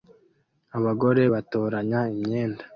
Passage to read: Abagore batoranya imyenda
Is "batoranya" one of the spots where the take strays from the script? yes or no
no